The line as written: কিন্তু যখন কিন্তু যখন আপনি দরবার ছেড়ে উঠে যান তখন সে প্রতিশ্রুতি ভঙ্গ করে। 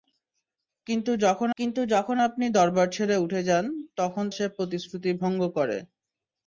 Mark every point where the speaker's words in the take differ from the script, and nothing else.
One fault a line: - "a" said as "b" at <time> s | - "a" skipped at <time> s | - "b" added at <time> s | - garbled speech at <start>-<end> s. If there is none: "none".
none